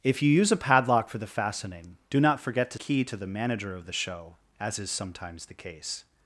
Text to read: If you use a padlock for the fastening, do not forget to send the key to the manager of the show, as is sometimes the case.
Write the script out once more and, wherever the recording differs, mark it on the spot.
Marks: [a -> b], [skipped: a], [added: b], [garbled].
If you use a padlock for the fastening, do not forget to [skipped: send the] key to the manager of the show, as is sometimes the case.